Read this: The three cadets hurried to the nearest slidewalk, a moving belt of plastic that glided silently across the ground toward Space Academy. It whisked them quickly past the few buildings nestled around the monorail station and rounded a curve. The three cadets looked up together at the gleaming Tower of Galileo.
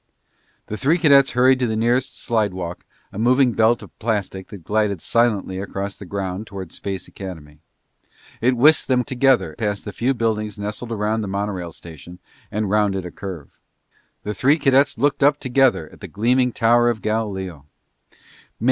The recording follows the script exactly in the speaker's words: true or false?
false